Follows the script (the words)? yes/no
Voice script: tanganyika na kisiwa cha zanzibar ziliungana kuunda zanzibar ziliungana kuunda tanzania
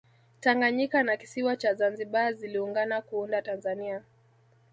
no